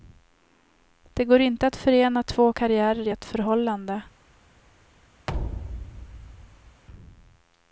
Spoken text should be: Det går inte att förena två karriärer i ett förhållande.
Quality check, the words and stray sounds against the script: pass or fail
fail